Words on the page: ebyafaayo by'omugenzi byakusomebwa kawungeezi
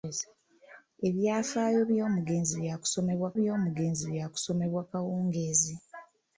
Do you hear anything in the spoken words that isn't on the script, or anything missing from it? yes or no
yes